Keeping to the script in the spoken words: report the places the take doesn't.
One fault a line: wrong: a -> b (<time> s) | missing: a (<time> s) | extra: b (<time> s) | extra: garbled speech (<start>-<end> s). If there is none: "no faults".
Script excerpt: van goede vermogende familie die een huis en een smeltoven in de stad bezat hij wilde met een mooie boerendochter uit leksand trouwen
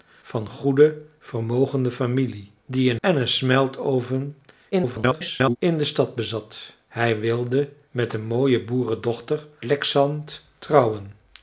missing: huis (3.0 s)
extra: garbled speech (4.7-5.6 s)
missing: uit (9.5 s)